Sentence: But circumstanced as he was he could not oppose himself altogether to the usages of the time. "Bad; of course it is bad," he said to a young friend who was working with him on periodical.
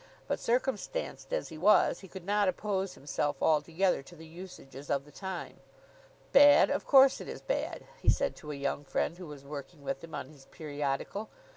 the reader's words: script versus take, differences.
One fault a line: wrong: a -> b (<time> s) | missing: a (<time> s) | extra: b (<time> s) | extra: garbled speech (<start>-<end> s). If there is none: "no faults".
extra: his (10.3 s)